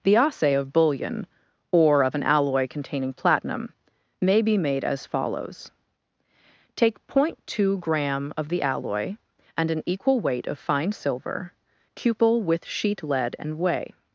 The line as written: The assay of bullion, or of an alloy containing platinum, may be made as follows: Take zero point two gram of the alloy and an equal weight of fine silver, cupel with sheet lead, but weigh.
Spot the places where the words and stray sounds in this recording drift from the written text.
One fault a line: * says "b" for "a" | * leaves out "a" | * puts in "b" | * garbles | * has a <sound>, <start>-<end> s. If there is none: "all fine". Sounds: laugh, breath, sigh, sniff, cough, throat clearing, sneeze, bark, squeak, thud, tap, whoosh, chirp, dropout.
* says "and" for "but"